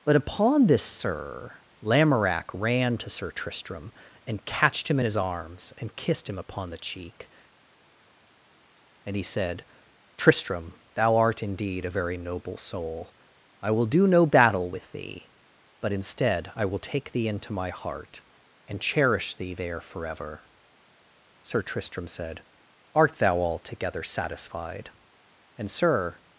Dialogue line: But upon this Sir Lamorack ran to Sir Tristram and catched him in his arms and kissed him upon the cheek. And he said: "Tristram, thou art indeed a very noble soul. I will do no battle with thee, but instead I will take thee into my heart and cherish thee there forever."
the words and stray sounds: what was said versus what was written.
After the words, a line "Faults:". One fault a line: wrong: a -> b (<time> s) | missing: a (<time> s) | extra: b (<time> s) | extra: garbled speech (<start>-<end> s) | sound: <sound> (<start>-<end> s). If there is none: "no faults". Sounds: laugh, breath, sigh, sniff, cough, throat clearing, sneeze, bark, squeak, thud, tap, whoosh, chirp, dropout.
But upon this Sir Lamorack ran to Sir Tristram and catched him in his arms and kissed him upon the cheek. And he said: "Tristram, thou art indeed a very noble soul. I will do no battle with thee, but instead I will take thee into my heart and cherish thee there forever." Sir Tristram said, "Art thou altogether satisfied?" And Sir
Faults:
extra: Sir Tristram said Art thou altogether satisfied And Sir (21.4 s)